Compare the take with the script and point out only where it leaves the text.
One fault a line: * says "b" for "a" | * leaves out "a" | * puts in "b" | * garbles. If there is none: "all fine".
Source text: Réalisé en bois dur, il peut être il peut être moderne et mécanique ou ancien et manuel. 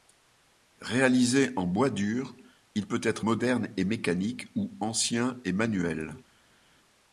* leaves out "il peut être"